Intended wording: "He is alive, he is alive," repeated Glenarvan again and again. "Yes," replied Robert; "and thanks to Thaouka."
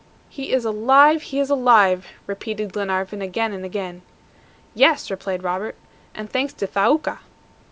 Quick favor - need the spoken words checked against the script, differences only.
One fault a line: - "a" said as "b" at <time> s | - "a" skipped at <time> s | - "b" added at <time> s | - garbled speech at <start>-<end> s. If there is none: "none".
none